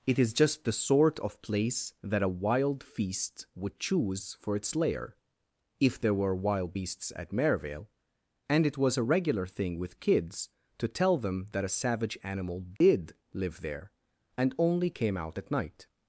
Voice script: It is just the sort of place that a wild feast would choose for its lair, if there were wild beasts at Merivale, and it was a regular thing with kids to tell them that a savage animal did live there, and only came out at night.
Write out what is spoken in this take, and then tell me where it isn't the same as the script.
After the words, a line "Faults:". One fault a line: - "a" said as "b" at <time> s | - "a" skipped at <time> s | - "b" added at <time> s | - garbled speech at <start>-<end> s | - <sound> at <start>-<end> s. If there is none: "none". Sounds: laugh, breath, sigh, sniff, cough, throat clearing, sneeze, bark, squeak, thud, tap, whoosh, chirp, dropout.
It is just the sort of place that a wild feast would choose for its lair, if there were wild beasts at Merivale, and it was a regular thing with kids to tell them that a savage animal did live there, and only came out at night.
Faults:
- dropout at 12.8-12.8 s